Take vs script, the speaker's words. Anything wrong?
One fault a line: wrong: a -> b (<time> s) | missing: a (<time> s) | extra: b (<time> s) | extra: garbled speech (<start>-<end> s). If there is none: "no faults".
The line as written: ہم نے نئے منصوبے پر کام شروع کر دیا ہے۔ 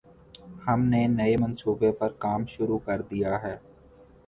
no faults